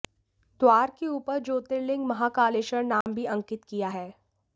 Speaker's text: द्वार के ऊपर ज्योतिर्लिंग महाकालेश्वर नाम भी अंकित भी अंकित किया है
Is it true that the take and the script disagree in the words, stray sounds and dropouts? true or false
true